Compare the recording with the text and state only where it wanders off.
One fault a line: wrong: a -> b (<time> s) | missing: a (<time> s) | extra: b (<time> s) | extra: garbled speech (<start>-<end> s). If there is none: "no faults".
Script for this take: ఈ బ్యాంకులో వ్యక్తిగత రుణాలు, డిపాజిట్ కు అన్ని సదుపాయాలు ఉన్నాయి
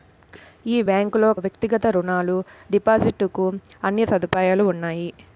no faults